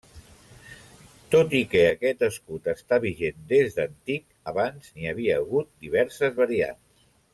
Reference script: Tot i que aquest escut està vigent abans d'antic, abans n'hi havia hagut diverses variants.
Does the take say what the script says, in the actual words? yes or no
no